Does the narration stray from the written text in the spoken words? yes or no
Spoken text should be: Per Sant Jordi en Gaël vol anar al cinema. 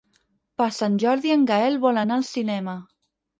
no